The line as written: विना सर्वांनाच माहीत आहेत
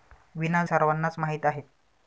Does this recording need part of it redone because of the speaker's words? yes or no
no